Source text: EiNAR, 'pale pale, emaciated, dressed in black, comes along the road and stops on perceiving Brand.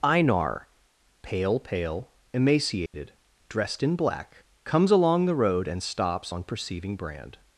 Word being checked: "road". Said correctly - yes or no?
yes